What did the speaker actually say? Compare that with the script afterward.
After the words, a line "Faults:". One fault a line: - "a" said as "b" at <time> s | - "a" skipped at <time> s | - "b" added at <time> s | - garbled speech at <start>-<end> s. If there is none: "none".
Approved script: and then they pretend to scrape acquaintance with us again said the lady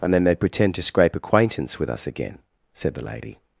and then they pretend to scrape acquaintance with us again said the lady
Faults:
none